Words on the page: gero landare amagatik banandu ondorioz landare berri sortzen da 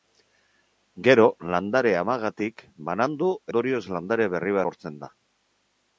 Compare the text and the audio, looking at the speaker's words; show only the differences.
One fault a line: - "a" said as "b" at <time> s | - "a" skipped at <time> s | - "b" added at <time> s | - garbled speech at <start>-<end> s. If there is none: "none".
none